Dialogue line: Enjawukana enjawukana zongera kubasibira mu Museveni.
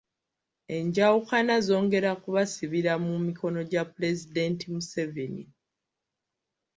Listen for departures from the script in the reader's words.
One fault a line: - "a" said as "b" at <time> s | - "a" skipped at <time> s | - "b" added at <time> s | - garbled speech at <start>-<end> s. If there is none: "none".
- "enjawukana" skipped at 1.6 s
- "mikono gya Pulezidenti" added at 3.2 s